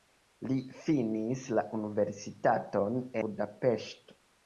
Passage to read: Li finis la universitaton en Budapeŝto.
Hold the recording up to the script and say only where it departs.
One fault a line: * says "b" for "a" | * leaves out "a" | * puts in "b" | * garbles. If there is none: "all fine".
* leaves out "en"